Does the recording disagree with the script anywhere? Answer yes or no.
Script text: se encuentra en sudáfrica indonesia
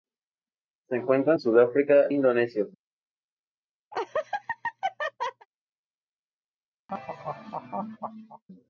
no